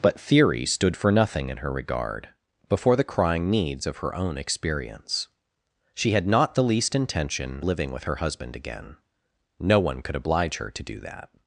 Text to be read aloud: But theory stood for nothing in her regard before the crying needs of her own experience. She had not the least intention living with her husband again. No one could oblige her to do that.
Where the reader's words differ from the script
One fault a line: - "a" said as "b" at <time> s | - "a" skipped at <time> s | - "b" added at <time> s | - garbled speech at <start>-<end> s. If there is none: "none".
none